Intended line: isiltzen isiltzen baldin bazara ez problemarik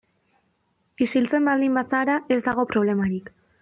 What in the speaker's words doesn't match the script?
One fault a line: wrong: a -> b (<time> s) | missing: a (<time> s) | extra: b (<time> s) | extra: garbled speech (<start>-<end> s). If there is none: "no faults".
missing: isiltzen (1.5 s)
extra: dago (2.5 s)